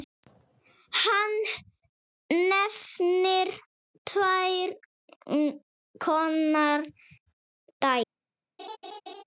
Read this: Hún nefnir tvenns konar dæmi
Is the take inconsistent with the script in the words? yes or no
yes